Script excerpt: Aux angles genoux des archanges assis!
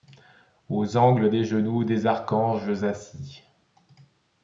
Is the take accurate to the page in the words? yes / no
no